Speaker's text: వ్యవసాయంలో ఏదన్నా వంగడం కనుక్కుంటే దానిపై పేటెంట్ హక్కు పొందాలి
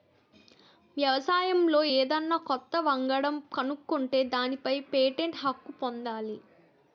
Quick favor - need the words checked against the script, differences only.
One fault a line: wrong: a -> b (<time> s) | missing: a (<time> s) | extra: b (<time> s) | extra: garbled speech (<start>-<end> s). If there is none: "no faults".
extra: కొత్త (2.4 s)